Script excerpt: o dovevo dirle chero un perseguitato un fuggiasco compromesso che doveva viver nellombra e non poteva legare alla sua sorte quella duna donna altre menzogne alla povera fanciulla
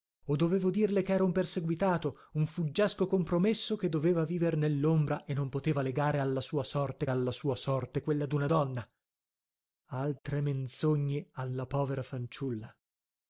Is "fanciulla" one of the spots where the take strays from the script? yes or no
no